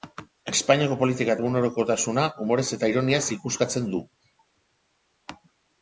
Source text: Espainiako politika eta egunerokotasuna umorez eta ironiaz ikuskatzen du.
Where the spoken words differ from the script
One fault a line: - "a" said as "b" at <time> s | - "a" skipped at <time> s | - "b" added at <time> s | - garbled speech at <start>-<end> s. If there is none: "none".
- "eta" skipped at 1.4 s